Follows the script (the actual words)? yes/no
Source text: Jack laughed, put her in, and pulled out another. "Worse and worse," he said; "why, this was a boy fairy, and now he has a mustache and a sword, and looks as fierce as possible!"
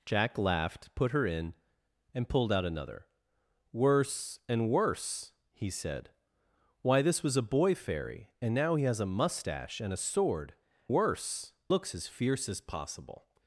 no